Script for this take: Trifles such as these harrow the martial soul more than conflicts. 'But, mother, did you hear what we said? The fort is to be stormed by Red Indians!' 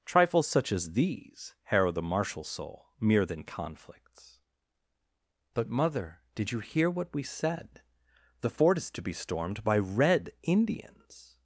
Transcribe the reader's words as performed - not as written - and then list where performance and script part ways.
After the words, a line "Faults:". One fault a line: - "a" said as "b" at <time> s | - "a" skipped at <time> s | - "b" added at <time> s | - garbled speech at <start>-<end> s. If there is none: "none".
Trifles such as these harrow the martial soul mere than conflicts. 'But, mother, did you hear what we said? The fort is to be stormed by Red Indians!'
Faults:
- "more" said as "mere" at 3.0 s